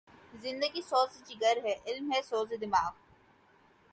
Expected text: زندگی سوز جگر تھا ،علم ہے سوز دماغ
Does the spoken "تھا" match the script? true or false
false